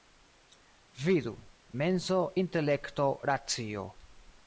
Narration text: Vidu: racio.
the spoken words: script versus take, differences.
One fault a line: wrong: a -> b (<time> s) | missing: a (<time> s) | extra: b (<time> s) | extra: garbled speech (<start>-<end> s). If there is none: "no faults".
extra: menso intelekto (1.8 s)